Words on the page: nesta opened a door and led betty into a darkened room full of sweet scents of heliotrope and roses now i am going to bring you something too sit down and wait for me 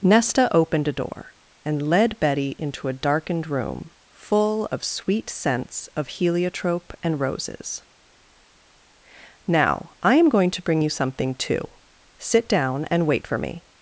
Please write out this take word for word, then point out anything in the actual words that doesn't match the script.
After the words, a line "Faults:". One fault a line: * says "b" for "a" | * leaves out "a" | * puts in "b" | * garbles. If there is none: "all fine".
nesta opened a door and led betty into a darkened room full of sweet scents of heliotrope and roses now i am going to bring you something too sit down and wait for me
Faults:
all fine